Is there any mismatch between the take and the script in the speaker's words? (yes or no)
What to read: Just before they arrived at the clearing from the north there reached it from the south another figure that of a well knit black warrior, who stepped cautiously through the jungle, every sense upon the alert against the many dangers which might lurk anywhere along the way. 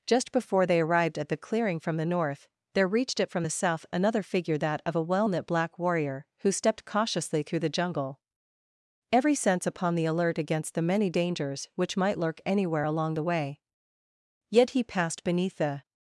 yes